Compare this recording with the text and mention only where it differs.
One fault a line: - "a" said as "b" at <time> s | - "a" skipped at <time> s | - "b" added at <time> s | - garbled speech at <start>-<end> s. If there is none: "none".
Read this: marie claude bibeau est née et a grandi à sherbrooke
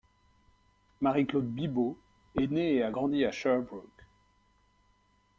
none